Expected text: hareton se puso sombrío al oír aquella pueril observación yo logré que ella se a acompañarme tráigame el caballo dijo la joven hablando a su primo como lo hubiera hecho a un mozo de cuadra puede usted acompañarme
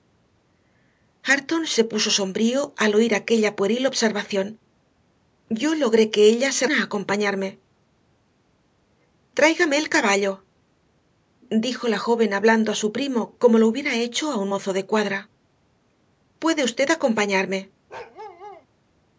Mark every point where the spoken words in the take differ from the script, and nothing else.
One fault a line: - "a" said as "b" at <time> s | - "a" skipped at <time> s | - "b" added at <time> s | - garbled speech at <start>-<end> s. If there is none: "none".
none